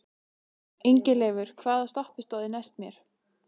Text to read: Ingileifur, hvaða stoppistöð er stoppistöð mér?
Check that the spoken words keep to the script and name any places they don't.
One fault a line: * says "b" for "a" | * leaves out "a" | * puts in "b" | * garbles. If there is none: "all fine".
* says "næst" for "stoppistöð"